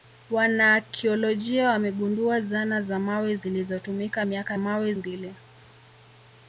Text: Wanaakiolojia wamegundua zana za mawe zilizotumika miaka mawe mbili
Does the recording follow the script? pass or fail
pass